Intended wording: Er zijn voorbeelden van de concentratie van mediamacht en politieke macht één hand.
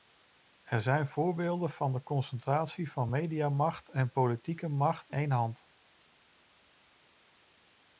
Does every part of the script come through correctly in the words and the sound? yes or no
yes